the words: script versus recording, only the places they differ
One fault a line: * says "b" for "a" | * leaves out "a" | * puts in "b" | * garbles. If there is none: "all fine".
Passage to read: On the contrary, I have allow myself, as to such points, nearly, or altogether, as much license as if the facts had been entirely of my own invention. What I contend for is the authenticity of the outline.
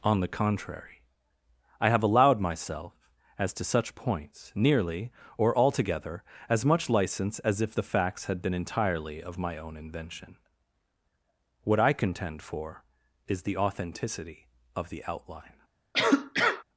* says "allowed" for "allow"